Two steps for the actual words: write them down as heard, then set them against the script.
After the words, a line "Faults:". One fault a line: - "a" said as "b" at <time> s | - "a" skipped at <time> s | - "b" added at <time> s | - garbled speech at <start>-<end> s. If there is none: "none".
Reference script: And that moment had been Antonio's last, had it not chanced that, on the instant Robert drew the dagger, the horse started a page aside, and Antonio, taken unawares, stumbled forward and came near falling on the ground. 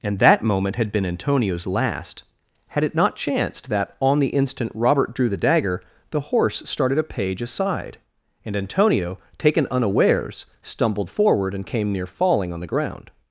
And that moment had been Antonio's last, had it not chanced that, on the instant Robert drew the dagger, the horse started a page aside, and Antonio, taken unawares, stumbled forward and came near falling on the ground.
Faults:
none